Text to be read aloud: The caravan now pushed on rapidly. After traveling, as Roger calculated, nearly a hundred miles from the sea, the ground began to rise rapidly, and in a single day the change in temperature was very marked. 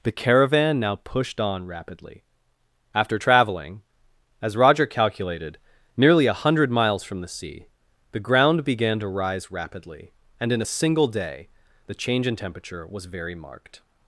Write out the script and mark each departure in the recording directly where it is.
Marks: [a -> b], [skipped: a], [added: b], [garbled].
The caravan now pushed on rapidly. After traveling, as Roger calculated, nearly a hundred miles from the sea, the ground began to rise rapidly, and in a single day the change in temperature was very marked.